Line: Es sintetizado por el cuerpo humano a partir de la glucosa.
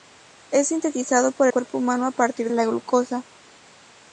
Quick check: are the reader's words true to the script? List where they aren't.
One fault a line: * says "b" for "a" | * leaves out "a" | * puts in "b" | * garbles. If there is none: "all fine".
* leaves out "el"
* leaves out "de"